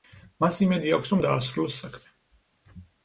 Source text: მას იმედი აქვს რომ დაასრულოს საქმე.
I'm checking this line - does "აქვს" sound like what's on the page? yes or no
yes